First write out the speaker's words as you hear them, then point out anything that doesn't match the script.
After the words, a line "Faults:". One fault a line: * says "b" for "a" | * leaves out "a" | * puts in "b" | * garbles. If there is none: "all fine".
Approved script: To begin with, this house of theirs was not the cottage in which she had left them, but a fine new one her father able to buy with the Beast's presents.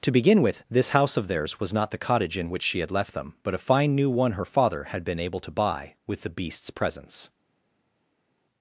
To begin with, this house of theirs was not the cottage in which she had left them, but a fine new one her father had been able to buy with the Beast's presents.
Faults:
* puts in "had been"